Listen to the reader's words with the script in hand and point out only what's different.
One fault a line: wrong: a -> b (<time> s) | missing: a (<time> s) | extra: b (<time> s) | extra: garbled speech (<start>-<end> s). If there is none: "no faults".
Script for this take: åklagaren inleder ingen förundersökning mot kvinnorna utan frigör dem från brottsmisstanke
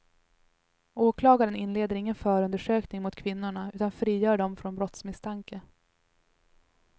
no faults